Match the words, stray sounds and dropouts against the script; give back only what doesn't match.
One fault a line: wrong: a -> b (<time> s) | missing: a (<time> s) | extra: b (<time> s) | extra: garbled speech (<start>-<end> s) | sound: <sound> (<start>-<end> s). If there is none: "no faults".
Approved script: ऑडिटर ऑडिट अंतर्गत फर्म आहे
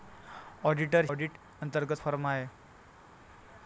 no faults